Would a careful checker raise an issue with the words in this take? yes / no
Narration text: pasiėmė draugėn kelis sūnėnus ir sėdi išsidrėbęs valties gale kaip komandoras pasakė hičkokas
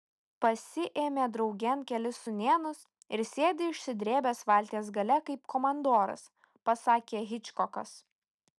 no